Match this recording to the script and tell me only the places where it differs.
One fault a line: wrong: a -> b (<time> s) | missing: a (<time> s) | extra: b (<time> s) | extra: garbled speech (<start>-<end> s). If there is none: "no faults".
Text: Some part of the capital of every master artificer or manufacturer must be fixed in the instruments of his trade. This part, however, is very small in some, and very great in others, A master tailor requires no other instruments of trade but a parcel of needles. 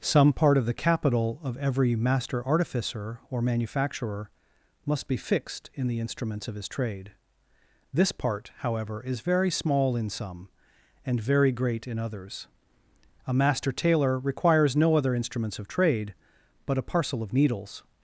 no faults